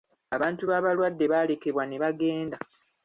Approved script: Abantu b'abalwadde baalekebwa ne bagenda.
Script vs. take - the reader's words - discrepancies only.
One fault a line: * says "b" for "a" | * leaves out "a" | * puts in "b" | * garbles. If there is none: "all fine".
all fine